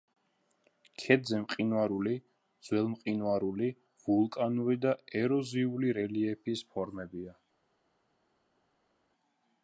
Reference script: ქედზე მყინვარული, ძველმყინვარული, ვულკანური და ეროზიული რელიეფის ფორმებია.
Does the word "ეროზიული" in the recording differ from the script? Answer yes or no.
no